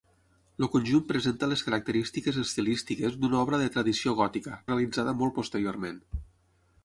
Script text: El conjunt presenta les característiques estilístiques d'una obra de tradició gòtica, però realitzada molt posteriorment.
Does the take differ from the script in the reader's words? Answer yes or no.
yes